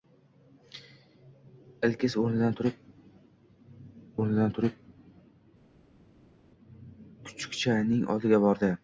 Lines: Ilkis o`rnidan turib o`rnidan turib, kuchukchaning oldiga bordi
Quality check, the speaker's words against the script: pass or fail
pass